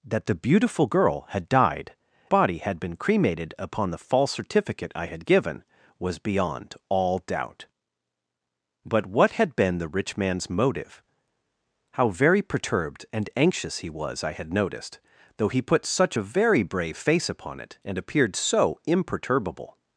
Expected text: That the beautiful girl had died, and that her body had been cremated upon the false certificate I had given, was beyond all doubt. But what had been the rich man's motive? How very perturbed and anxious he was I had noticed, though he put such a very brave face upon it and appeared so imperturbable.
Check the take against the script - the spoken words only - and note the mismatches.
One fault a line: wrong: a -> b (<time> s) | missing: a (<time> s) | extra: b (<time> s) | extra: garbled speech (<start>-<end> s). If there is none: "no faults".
missing: and that her (1.9 s)